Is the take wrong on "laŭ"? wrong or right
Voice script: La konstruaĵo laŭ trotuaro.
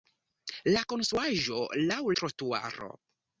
right